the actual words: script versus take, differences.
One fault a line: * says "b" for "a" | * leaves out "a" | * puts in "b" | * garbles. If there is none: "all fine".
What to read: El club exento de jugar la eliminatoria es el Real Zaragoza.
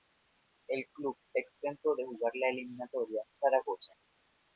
* leaves out "es el Real"